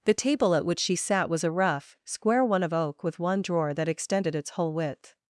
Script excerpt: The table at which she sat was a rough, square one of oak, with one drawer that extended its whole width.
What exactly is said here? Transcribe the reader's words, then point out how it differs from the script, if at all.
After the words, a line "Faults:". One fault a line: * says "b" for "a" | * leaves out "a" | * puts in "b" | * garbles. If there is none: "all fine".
The table at which she sat was a rough, square one of oak, with one drawer that extended its whole width.
Faults:
all fine